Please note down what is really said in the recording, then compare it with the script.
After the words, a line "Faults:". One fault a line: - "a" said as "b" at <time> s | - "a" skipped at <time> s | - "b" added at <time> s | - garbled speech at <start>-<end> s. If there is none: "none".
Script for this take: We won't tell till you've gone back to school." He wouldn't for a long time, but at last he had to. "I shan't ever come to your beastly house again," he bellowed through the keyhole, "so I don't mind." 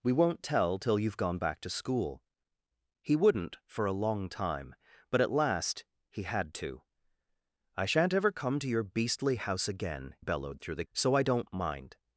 We won't tell till you've gone back to school." He wouldn't for a long time, but at last he had to. "I shan't ever come to your beastly house again," bellowed through the "so I don't mind."
Faults:
- "he" skipped at 10.2 s
- "keyhole" skipped at 10.8 s